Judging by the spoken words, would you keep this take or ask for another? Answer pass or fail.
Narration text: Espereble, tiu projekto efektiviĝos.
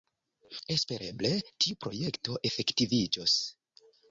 pass